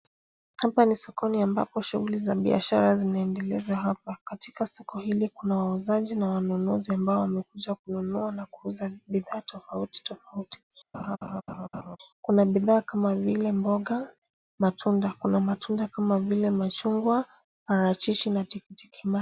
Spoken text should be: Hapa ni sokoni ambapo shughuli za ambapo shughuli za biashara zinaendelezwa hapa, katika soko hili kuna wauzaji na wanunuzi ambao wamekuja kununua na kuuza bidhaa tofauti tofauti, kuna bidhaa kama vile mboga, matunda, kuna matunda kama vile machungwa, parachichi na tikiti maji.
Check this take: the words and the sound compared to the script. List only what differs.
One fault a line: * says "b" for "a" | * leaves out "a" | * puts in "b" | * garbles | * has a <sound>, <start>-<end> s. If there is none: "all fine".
* leaves out "ambapo shughuli za"
* has a laugh, 10.9-12.0 s